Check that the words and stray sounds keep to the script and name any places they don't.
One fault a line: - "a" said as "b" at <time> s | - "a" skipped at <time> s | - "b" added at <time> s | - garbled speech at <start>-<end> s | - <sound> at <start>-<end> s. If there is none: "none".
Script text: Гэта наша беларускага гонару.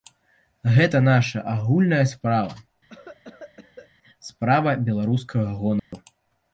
- "агульная справа справа" added at 1.5 s
- cough at 2.9-3.9 s
- dropout at 5.8-5.9 s